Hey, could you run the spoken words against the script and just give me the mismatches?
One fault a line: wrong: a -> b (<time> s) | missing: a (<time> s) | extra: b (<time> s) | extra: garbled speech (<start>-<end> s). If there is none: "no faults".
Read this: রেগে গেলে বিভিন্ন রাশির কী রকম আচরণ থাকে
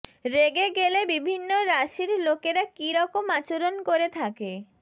extra: লোকেরা (2.3 s)
extra: করে (3.9 s)